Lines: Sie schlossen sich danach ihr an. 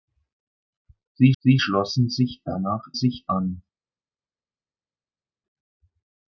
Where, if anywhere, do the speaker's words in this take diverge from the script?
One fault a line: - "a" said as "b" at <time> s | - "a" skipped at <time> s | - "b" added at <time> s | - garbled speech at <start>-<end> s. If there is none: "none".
- "sie" added at 1.4 s
- "ihr" said as "sich" at 2.9 s